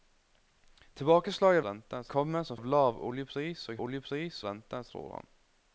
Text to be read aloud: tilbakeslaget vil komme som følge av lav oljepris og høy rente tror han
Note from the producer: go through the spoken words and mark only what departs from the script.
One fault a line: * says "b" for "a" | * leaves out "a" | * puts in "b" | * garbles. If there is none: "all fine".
* says "rente" for "vil"
* leaves out "følge"
* says "oljepris" for "høy"